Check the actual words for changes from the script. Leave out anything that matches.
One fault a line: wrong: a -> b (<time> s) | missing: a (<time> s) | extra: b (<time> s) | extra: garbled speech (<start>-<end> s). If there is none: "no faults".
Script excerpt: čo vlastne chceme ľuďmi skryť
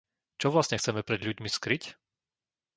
extra: pred (1.0 s)